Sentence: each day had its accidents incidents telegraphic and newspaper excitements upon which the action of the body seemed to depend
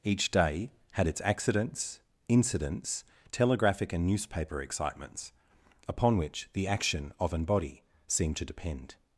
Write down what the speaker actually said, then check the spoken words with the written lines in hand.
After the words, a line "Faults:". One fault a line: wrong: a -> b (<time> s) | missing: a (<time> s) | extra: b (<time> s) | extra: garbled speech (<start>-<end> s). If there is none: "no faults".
each day had its accidents incidents telegraphic and newspaper excitements upon which the action of an body seemed to depend
Faults:
wrong: the -> an (7.3 s)